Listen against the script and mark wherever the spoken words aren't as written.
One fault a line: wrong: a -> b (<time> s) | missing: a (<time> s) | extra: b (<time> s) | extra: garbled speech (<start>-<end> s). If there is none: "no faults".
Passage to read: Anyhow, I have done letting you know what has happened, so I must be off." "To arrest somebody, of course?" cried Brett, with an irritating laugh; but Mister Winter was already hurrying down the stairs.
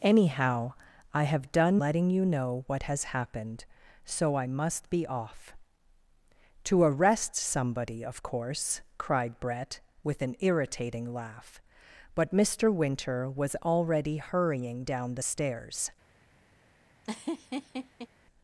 no faults